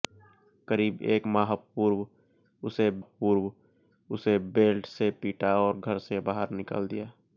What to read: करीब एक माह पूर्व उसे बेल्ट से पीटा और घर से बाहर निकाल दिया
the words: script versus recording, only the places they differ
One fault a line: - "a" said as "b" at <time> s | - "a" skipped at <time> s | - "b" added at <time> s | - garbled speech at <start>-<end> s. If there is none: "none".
- "पूर्व उसे" added at 3.0 s